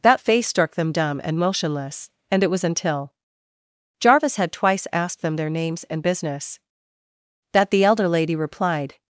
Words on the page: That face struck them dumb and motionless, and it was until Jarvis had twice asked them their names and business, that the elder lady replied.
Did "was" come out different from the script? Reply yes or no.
no